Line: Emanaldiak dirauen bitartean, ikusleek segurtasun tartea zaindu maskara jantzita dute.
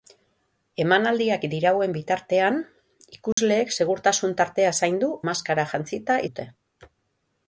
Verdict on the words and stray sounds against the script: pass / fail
fail